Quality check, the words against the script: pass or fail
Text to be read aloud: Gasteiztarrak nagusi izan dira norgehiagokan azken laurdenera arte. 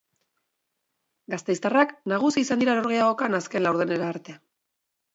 pass